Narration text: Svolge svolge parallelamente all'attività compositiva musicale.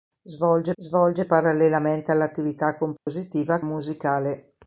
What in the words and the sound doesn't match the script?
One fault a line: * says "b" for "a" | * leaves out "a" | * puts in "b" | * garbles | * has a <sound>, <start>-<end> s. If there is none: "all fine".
* has a dropout, 3.0-3.1 s